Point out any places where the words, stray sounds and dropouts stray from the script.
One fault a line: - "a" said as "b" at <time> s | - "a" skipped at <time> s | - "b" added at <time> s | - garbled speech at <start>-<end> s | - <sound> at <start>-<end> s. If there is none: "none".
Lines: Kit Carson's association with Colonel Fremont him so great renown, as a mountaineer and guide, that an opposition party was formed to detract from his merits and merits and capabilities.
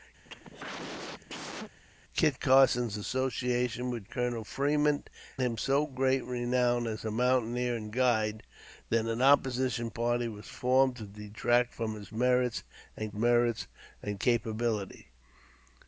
- cough at 0.2-1.8 s